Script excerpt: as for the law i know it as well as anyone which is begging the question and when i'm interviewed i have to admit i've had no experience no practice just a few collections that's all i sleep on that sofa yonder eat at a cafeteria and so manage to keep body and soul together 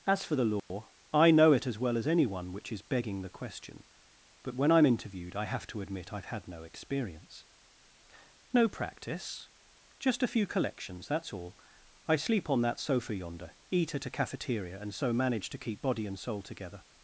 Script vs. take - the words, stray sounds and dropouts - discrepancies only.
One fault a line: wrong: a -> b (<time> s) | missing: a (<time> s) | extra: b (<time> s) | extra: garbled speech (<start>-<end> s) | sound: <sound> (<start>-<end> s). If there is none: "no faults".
sound: dropout (0.6-0.7 s)
wrong: and -> but (4.4 s)